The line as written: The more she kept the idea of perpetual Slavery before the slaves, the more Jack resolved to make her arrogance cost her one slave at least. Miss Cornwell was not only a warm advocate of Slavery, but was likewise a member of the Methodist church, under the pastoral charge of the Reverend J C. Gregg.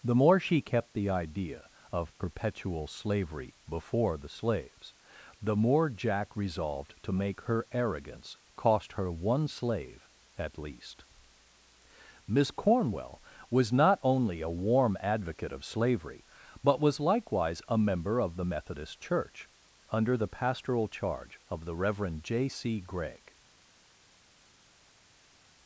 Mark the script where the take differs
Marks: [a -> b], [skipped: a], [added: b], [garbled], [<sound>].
The more she kept the idea of perpetual Slavery before the slaves, the more Jack resolved to make her arrogance cost her one slave at least. Miss Cornwell was not only a warm advocate of Slavery, but was likewise a member of the Methodist church, under the pastoral charge of the Reverend J C. Gregg.